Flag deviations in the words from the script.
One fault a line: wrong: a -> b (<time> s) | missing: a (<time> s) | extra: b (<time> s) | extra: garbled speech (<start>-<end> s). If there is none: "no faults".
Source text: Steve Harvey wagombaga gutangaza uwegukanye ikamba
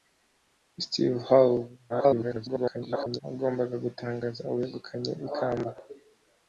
extra: garbled speech (1.9-3.2 s)